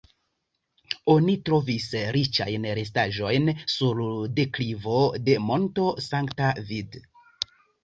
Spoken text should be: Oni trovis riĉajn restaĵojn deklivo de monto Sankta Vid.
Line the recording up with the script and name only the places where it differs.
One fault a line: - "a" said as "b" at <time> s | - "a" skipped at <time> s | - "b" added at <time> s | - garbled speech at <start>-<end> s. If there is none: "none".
- "sur" added at 3.7 s